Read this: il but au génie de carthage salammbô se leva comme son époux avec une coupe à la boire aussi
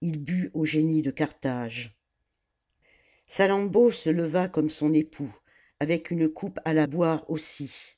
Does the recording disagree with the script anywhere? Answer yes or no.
no